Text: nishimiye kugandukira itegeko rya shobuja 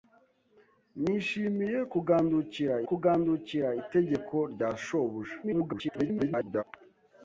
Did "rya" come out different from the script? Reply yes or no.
no